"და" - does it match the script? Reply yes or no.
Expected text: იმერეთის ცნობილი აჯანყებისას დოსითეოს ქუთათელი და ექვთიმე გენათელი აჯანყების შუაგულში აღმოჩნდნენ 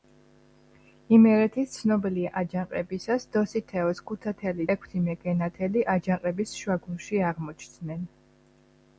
no